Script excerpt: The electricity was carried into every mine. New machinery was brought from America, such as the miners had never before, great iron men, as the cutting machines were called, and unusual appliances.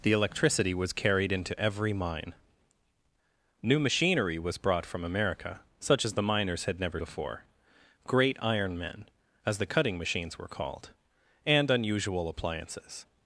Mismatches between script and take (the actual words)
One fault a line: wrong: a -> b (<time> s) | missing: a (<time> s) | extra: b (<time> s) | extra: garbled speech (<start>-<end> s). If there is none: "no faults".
no faults